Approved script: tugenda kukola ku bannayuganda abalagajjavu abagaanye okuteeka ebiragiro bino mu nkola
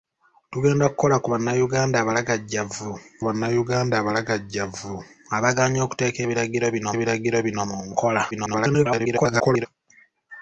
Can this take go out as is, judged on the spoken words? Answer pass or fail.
fail